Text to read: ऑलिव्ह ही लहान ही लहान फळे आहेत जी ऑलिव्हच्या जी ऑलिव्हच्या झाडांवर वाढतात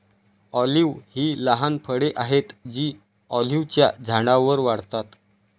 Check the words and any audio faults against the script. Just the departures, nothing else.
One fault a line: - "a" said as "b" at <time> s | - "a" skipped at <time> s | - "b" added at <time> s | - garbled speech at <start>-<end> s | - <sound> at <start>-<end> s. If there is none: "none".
- "ही लहान" skipped at 1.8 s
- "जी ऑलिव्हच्या" skipped at 3.9 s